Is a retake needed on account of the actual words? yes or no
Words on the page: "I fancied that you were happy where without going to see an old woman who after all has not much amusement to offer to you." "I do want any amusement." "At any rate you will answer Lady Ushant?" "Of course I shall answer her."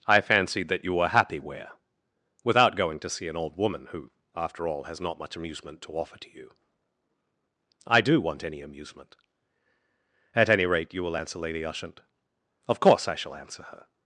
no